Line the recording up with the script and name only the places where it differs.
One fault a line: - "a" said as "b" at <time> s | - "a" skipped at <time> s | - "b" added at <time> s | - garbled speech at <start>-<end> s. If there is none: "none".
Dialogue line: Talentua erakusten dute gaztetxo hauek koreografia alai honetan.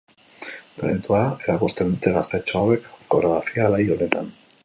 none